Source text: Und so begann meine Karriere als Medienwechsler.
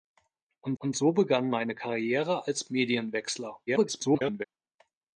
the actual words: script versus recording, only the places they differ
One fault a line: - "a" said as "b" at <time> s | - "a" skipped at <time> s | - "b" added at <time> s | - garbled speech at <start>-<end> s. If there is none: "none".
- "und" added at 0.8 s
- garbled speech at 3.7-4.4 s